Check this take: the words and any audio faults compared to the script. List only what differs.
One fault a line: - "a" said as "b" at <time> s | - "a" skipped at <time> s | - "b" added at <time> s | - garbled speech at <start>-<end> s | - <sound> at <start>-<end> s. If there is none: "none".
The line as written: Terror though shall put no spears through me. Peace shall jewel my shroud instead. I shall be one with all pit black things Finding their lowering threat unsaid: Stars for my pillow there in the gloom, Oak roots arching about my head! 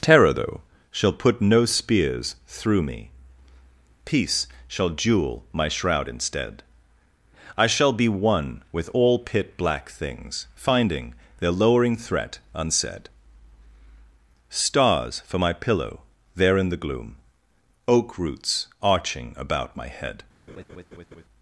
- laugh at 20.5-21.2 s